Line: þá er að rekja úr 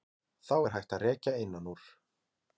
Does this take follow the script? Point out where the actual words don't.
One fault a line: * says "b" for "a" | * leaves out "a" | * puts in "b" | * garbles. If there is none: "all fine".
* puts in "hægt"
* puts in "innan"